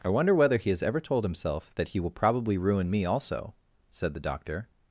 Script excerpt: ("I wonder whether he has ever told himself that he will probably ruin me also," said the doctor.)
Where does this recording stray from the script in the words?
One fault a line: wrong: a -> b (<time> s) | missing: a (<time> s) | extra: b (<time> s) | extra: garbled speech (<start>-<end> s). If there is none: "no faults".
no faults